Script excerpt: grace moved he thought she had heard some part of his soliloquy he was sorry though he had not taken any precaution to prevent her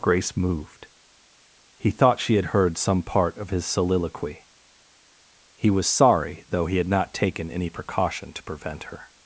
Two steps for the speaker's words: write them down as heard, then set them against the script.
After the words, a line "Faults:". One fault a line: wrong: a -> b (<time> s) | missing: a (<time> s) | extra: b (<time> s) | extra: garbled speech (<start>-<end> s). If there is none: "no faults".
grace moved he thought she had heard some part of his soliloquy he was sorry though he had not taken any precaution to prevent her
Faults:
no faults